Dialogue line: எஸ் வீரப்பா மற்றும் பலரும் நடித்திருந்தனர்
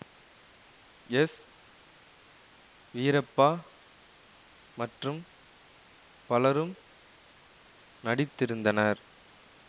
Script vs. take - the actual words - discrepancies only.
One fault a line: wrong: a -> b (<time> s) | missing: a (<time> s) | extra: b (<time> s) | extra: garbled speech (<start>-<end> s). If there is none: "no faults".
no faults